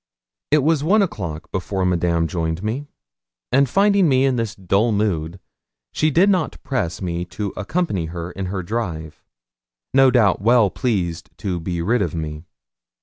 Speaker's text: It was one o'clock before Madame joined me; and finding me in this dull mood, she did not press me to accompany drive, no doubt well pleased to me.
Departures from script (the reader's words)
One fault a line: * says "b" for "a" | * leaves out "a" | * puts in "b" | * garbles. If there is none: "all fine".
* puts in "her in her"
* puts in "be rid of"